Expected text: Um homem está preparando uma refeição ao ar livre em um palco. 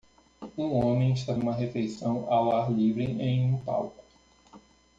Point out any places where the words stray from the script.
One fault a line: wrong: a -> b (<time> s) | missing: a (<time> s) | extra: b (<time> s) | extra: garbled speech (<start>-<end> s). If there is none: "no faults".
missing: preparando (1.4 s)